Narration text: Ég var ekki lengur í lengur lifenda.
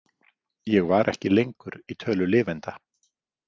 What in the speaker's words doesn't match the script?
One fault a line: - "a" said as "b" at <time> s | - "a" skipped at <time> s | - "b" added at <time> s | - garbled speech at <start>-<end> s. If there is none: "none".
- "lengur" said as "tölu" at 2.0 s